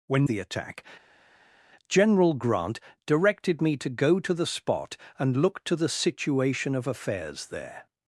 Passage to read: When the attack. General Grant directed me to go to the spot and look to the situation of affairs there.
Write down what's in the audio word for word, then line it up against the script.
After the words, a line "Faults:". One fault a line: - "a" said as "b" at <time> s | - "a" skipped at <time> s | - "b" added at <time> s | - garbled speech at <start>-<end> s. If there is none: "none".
When the attack. General Grant directed me to go to the spot and look to the situation of affairs there.
Faults:
none